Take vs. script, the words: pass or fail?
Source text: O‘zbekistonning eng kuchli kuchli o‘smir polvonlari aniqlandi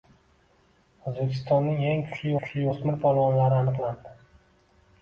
pass